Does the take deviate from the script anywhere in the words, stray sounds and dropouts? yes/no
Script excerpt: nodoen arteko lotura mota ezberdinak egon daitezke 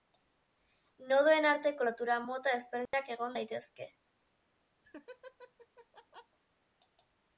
yes